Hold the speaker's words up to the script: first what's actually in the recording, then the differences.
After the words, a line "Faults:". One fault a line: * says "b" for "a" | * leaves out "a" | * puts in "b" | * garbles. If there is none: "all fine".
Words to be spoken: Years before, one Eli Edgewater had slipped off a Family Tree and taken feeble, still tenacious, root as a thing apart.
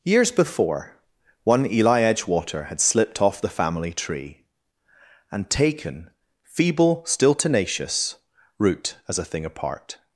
Years before, one Eli Edgewater had slipped off the Family Tree and taken feeble, still tenacious, root as a thing apart.
Faults:
* says "the" for "a"